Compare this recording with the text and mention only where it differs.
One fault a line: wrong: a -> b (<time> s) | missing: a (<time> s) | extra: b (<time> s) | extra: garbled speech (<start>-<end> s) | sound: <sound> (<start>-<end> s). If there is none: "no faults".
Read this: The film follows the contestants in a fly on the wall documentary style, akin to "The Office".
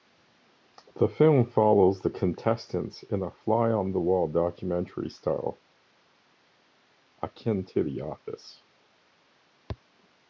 no faults